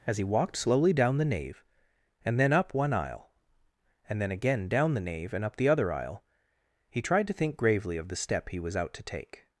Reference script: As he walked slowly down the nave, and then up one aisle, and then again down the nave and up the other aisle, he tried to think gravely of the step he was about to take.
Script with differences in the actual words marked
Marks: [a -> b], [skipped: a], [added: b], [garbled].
As he walked slowly down the nave, and then up one aisle, and then again down the nave and up the other aisle, he tried to think gravely of the step he was [about -> out] to take.